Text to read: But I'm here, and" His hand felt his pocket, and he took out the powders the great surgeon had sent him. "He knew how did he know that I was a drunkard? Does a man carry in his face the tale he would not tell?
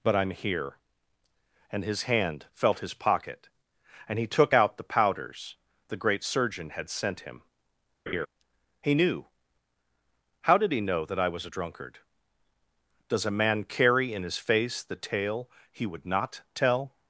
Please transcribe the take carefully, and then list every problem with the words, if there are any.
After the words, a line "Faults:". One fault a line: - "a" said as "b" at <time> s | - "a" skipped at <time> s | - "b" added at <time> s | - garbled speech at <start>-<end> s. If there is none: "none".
But I'm here, and" His hand felt his pocket, and he took out the powders the great surgeon had sent him. "He knew how did he know that I was a drunkard? Does a man carry in his face the tale he would not tell?
Faults:
none